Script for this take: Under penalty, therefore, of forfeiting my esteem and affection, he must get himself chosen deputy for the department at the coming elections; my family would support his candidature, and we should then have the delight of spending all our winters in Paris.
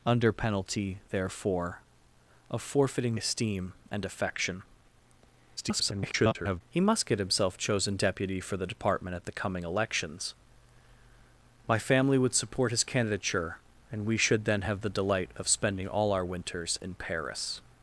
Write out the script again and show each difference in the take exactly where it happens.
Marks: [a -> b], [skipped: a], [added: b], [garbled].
Under penalty, therefore, of forfeiting [skipped: my] esteem and affection, [garbled] he must get himself chosen deputy for the department at the coming elections; my family would support his candidature, and we should then have the delight of spending all our winters in Paris.